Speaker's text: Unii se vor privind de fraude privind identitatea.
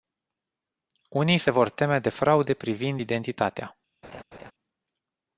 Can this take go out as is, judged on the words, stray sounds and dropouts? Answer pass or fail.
fail